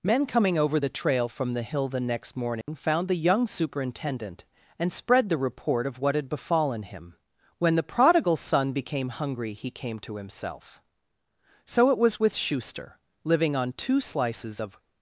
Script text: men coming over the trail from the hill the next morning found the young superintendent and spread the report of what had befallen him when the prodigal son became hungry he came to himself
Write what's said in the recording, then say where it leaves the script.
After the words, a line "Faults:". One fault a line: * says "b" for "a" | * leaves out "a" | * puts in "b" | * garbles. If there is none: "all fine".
men coming over the trail from the hill the next morning found the young superintendent and spread the report of what had befallen him when the prodigal son became hungry he came to himself so it was with schuster living on two slices of
Faults:
* puts in "so it was with schuster living on two slices of"